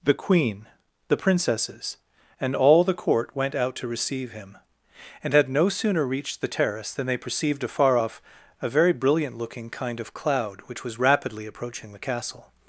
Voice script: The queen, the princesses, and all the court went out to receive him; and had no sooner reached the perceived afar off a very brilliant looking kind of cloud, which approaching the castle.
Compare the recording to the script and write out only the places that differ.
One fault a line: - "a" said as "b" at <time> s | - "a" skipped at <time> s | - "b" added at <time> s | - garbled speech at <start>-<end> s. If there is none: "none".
- "terrace than they" added at 6.5 s
- "was rapidly" added at 10.8 s